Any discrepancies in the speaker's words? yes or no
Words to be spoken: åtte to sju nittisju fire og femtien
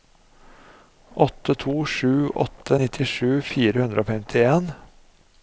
yes